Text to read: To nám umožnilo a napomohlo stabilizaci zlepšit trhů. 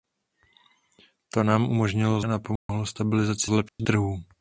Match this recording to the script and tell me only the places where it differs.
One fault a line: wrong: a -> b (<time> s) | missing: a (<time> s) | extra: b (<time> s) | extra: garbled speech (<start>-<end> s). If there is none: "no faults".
no faults